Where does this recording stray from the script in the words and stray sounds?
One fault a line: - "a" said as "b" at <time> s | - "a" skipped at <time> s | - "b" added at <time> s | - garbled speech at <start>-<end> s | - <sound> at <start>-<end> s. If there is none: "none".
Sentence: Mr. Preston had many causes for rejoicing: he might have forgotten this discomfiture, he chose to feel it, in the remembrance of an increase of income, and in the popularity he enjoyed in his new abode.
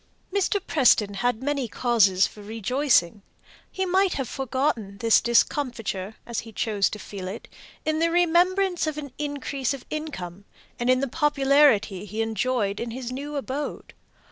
- "as" added at 6.2 s